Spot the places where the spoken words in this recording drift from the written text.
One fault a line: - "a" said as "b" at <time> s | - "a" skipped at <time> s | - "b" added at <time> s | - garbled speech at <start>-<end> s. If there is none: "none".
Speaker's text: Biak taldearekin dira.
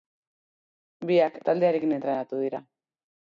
- "entrenatu" added at 2.0 s